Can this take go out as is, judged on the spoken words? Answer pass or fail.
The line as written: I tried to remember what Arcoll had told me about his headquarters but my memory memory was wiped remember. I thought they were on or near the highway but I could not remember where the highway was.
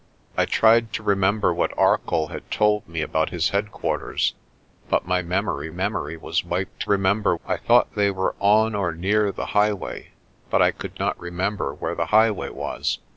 pass